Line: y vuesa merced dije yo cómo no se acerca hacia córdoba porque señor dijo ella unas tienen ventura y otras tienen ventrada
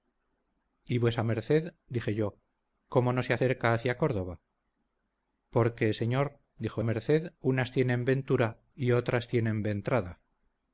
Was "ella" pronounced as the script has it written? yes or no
no